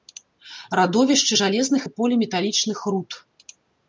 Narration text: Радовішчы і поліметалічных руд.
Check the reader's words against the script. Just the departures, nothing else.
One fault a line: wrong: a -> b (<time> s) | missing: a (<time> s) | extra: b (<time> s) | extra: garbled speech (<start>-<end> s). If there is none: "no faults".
extra: жалезных (1.4 s)